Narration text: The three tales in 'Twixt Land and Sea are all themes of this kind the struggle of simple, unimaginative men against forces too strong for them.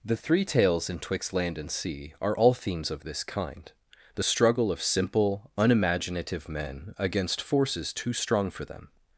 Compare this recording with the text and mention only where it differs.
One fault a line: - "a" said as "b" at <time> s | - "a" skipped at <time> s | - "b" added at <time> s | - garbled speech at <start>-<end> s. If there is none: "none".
none